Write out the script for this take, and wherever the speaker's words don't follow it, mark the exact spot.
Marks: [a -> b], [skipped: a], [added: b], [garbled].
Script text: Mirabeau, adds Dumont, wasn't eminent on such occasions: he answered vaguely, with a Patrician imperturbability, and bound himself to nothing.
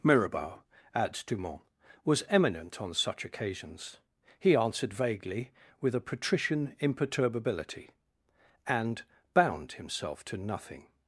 Mirabeau, adds Dumont, [wasn't -> was] eminent on such occasions: he answered vaguely, with a Patrician imperturbability, and bound himself to nothing.